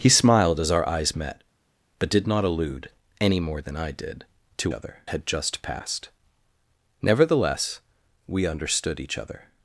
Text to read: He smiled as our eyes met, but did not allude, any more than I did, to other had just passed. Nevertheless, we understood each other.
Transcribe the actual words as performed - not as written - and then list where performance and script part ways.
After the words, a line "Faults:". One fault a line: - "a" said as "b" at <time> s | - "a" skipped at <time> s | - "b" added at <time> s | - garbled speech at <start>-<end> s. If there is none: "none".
He smiled as our eyes met, but did not allude, any more than I did, to other had just passed. Nevertheless, we understood each other.
Faults:
none